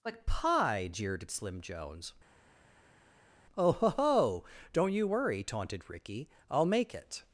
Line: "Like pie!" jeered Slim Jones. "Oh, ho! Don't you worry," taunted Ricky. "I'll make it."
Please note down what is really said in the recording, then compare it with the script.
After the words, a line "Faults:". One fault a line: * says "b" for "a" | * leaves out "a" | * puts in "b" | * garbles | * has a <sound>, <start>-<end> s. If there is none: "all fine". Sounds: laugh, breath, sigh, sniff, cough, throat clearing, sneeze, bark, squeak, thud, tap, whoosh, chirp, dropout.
"Like pie!" jeered Slim Jones. "Oh, ho! ho Don't you worry," taunted Ricky. "I'll make it."
Faults:
* puts in "ho"